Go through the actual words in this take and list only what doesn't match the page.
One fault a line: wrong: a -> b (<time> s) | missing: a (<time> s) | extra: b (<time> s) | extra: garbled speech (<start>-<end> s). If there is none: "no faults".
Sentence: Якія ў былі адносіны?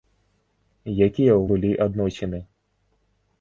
no faults